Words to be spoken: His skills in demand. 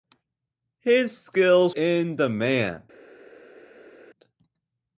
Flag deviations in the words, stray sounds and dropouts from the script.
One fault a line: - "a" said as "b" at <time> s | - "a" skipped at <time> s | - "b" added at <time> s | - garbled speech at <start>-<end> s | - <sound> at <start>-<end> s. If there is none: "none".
none